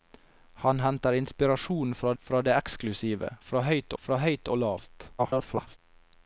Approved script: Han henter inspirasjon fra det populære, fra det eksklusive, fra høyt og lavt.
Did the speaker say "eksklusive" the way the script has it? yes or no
no